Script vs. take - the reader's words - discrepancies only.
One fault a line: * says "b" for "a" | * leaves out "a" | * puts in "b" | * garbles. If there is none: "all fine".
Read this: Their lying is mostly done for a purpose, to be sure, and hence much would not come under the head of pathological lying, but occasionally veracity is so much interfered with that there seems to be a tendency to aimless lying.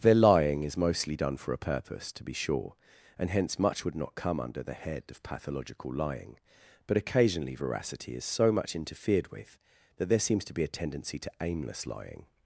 all fine